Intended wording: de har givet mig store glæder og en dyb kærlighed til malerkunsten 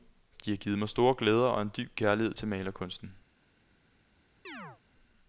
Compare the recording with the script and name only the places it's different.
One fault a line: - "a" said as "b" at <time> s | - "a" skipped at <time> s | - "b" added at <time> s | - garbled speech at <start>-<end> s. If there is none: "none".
none